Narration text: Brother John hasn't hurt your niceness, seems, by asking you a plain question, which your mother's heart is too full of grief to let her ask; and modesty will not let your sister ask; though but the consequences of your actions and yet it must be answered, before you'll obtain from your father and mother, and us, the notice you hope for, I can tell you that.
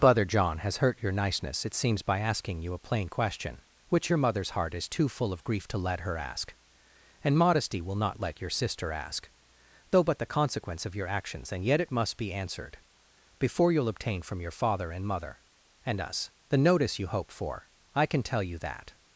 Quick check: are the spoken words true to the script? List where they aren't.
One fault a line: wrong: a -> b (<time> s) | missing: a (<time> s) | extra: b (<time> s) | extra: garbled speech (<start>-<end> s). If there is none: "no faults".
wrong: hasn't -> has (0.6 s)
extra: it (1.6 s)
wrong: consequences -> consequence (10.2 s)